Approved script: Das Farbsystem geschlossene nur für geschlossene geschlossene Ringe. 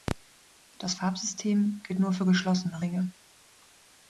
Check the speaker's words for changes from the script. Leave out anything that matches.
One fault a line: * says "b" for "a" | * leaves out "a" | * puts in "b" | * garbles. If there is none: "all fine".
* says "gilt" for "geschlossene"
* leaves out "geschlossene"